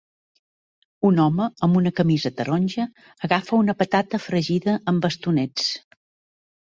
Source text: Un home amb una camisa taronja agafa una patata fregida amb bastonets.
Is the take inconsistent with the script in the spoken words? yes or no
no